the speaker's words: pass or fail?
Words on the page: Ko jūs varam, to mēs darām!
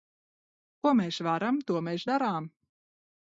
fail